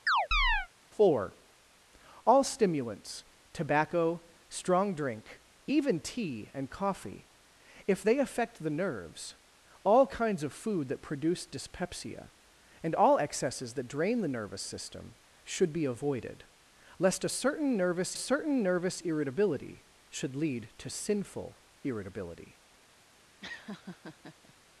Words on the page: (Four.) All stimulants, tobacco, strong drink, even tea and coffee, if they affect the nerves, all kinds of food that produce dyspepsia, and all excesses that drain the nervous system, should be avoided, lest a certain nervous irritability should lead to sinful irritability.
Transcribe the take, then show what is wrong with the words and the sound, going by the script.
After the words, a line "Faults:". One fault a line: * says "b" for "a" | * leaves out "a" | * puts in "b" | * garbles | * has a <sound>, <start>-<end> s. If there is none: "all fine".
(Four.) All stimulants, tobacco, strong drink, even tea and coffee, if they affect the nerves, all kinds of food that produce dyspepsia, and all excesses that drain the nervous system, should be avoided, lest a certain nervous certain nervous irritability should lead to sinful irritability.
Faults:
* has a chirp, 0.1-0.7 s
* puts in "certain nervous"
* has a laugh, 23.4-24.5 s